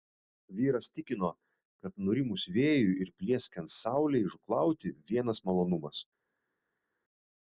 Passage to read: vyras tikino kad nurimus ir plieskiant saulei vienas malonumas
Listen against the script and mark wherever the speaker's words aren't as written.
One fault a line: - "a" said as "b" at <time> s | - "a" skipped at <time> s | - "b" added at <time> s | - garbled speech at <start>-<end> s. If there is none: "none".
- "vėjui" added at 2.6 s
- "žūklauti" added at 4.3 s